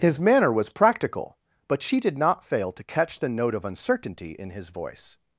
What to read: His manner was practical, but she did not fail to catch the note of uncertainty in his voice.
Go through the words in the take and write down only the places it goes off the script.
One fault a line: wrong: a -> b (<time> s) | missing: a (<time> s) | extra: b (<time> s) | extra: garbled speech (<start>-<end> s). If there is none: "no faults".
no faults